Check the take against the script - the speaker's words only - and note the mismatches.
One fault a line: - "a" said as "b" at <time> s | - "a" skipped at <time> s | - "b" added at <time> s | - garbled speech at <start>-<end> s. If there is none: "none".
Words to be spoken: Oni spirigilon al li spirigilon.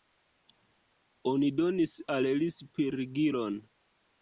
- "spirigilon" said as "donis" at 1.6 s